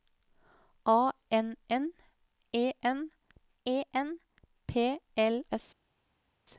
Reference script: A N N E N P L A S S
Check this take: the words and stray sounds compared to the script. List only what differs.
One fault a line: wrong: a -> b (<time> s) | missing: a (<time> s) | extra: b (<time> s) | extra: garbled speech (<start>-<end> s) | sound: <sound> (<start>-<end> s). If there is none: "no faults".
extra: E N (3.6 s)
missing: A S (5.4 s)